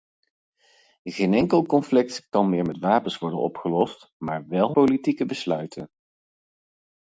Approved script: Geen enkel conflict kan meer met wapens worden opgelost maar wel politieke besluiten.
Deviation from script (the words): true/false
false